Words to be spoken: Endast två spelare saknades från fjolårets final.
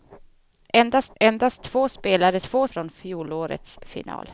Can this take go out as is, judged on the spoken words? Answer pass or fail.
fail